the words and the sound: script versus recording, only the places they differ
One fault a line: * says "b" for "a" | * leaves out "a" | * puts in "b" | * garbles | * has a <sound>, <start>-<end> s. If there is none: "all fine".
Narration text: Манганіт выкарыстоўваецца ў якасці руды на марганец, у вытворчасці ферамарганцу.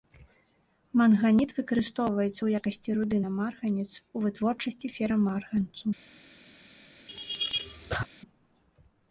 * has a laugh, 7.1-8.1 s